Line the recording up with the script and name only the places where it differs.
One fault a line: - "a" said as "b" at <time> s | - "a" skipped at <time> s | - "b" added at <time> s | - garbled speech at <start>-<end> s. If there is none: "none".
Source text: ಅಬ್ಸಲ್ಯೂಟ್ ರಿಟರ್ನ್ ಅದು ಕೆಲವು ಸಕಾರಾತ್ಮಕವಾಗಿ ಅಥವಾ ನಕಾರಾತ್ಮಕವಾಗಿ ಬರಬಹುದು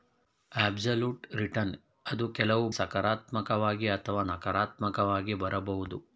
none